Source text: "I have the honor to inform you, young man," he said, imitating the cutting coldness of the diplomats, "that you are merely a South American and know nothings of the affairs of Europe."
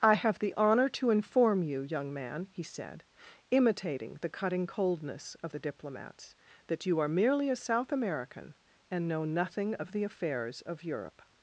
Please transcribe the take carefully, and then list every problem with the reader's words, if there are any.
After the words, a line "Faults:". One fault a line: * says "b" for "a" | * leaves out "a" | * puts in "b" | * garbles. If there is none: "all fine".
"I have the honor to inform you, young man," he said, imitating the cutting coldness of the diplomats, "that you are merely a South American and know nothing of the affairs of Europe."
Faults:
* says "nothing" for "nothings"